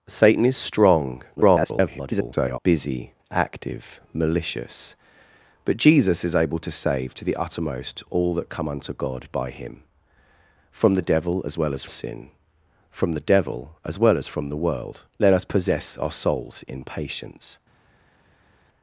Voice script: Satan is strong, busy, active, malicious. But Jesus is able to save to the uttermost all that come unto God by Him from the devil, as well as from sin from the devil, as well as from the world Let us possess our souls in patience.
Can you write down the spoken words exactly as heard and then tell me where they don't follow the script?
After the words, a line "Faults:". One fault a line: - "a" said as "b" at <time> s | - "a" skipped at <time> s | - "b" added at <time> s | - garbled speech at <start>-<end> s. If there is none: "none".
Satan is strong, [garbled] busy, active, malicious. But Jesus is able to save to the uttermost all that come unto God by Him from the devil, as well as sin from the devil, as well as from the world Let us possess our souls in patience.
Faults:
- garbled speech at 1.4-2.6 s
- "from" skipped at 11.8 s